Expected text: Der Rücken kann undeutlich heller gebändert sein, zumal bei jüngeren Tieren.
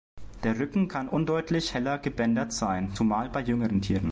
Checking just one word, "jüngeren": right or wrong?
right